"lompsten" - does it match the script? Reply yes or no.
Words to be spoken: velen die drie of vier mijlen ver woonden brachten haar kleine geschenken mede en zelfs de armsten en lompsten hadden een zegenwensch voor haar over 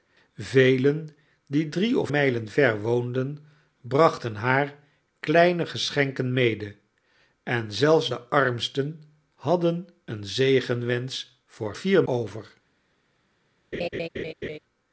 no